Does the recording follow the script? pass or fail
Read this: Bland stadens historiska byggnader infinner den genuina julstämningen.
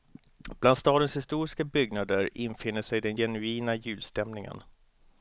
fail